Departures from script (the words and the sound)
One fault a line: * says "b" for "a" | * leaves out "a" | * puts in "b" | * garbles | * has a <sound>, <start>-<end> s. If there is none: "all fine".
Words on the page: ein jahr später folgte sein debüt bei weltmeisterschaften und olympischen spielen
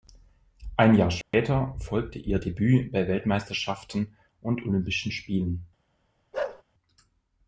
* has a dropout, 1.2-1.3 s
* says "ihr" for "sein"
* has a bark, 6.3-6.6 s